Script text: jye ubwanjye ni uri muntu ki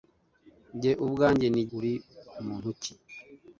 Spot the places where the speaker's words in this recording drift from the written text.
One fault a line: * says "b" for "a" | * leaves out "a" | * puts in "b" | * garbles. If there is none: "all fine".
all fine